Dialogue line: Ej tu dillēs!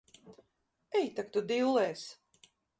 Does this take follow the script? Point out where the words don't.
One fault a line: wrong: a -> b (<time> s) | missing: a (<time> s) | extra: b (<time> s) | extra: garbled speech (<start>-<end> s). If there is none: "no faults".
extra: tak (1.2 s)